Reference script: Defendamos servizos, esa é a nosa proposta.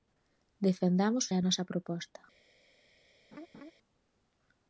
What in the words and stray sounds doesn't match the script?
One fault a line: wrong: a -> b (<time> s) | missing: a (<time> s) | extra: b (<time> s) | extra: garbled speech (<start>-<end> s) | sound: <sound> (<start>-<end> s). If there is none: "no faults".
missing: servizos esa (1.2 s)
sound: laugh (3.3-3.7 s)